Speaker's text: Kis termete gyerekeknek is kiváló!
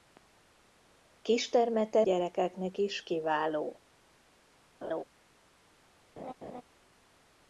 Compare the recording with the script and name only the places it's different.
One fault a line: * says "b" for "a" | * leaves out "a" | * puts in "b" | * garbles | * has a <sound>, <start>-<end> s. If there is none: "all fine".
* has a laugh, 4.8-5.0 s
* has a laugh, 6.2-6.6 s